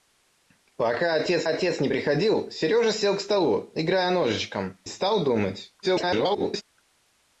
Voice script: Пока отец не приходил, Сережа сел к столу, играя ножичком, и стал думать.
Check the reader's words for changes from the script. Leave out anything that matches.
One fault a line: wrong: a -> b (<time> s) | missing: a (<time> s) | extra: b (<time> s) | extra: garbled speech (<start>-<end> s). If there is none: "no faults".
extra: отец (1.5 s)
missing: и (4.8 s)
extra: garbled speech (5.8-6.6 s)